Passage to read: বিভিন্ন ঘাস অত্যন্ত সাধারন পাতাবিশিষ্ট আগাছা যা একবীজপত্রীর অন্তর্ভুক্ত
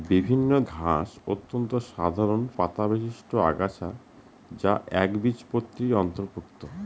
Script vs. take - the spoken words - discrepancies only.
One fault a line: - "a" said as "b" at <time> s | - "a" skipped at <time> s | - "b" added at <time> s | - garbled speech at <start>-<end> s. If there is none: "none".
none